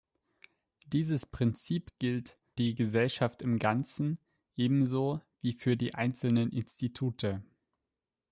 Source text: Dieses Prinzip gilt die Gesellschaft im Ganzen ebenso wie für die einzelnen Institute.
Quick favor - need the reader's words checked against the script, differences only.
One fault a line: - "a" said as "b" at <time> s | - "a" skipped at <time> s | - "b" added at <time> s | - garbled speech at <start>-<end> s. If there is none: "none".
none